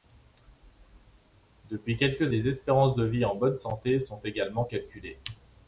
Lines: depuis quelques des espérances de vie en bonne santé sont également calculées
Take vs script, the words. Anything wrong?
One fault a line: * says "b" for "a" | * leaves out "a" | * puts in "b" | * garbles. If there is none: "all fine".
all fine